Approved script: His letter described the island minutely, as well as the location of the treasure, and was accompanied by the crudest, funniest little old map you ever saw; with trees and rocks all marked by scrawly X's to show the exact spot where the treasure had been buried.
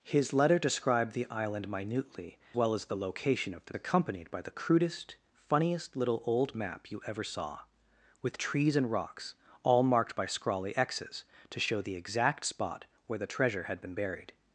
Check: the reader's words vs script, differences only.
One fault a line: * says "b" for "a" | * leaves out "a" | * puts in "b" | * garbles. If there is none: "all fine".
* leaves out "as"
* leaves out "treasure and was"